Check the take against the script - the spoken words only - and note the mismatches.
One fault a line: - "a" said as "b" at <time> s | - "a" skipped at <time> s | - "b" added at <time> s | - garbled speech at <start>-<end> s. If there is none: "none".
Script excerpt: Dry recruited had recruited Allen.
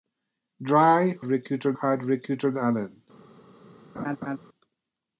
none